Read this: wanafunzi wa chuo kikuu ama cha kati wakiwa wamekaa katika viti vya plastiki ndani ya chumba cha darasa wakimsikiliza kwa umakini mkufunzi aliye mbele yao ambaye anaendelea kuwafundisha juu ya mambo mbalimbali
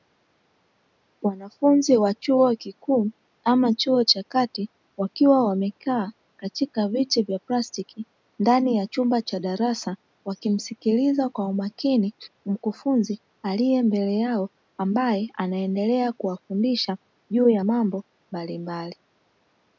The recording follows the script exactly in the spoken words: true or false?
false